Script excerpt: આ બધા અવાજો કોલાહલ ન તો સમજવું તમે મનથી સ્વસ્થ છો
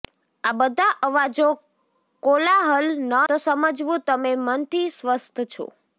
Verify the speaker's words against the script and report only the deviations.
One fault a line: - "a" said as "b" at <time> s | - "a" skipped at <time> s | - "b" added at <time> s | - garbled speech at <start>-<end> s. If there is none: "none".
none